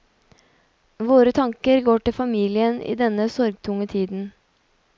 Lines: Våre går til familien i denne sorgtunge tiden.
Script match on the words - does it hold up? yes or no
no